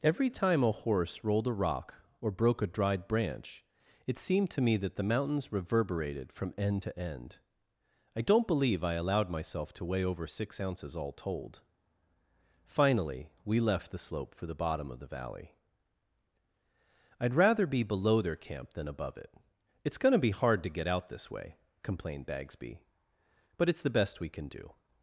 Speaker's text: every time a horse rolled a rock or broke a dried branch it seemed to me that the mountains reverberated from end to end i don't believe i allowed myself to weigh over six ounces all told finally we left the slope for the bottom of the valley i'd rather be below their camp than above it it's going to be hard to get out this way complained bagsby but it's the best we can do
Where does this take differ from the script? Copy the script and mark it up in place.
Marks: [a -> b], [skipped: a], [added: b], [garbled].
every time a horse rolled a rock or broke a dried branch it seemed to me that the mountains reverberated from end to end i don't believe i allowed myself to weigh over six ounces all told finally we left the slope for the bottom of the valley i'd rather be below their camp than above it it's going to be hard to get out this way complained bagsby but it's the best we can do